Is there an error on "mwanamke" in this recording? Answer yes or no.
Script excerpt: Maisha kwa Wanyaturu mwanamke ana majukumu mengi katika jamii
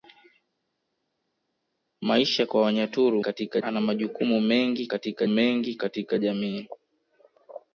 yes